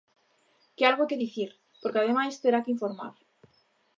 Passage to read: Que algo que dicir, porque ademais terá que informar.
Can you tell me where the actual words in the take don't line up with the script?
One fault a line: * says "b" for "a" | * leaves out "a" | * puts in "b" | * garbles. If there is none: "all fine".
all fine